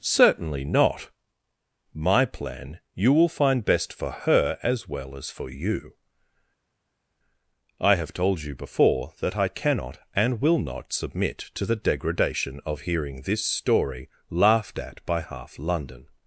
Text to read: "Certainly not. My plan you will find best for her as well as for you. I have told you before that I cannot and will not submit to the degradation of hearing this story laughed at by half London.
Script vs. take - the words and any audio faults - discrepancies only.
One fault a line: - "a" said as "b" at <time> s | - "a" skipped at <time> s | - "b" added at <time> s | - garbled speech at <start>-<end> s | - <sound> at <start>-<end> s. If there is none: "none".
none